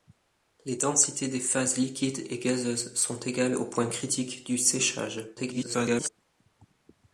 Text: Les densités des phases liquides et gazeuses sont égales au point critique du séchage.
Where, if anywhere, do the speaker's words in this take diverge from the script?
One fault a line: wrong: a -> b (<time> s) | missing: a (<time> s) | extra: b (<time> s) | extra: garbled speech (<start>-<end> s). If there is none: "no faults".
extra: garbled speech (5.4-6.1 s)